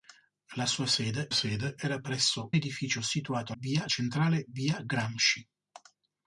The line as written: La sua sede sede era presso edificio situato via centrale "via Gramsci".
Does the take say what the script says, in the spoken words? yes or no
yes